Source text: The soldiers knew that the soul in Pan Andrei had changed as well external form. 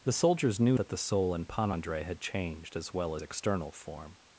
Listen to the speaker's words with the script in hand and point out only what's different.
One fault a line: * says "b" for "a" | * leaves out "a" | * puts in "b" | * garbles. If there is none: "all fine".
all fine